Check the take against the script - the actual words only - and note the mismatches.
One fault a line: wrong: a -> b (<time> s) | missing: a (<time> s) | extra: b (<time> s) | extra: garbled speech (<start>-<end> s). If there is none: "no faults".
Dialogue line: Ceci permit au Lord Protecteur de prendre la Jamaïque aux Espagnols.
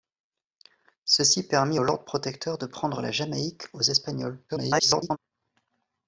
extra: garbled speech (4.5-5.2 s)